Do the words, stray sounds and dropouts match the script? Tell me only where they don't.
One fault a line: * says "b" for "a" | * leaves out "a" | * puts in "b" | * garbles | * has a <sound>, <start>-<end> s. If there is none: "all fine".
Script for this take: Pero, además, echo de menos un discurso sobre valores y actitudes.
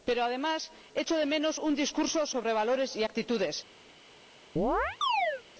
* has a chirp, 4.6-5.4 s